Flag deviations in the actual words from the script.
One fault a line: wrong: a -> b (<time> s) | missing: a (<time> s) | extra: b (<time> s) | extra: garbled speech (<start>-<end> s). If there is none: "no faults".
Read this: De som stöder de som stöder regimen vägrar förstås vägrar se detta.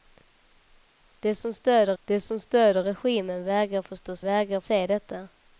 no faults